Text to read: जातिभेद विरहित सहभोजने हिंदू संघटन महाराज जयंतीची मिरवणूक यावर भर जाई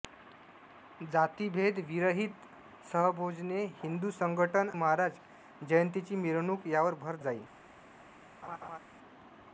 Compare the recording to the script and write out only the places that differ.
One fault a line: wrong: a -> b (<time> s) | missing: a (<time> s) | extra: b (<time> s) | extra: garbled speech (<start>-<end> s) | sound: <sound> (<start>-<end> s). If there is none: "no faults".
sound: laugh (8.4-8.8 s)